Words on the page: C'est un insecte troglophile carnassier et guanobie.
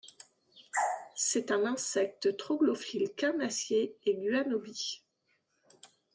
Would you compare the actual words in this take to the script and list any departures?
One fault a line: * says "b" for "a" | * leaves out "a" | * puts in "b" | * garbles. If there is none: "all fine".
all fine